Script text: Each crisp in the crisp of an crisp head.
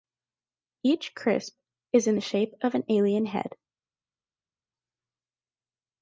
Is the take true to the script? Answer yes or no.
no